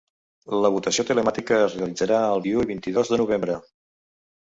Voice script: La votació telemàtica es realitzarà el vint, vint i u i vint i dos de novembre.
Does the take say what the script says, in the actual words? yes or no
no